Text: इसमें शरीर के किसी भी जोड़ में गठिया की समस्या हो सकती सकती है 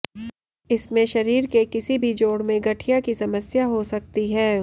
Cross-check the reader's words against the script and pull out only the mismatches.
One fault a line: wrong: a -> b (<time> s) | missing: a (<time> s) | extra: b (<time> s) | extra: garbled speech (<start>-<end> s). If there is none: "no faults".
missing: सकती (4.3 s)